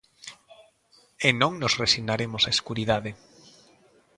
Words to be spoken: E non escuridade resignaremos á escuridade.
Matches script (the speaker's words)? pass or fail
fail